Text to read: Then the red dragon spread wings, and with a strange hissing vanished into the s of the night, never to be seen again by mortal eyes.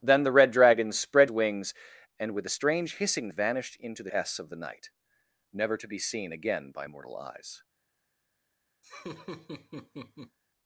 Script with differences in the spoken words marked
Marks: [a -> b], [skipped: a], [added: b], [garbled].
Then the red dragon spread wings, and with a strange hissing vanished into the s of the night, never to be seen again by mortal eyes.